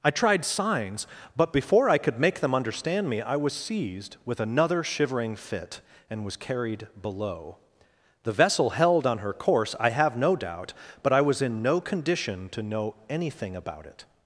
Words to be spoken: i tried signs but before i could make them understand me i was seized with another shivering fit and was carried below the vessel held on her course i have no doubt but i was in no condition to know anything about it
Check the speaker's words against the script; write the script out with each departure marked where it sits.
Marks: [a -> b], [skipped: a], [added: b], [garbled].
i tried signs but before i could make them understand me i was seized with another shivering fit and was carried below the vessel held on her course i have no doubt but i was in no condition to know anything about it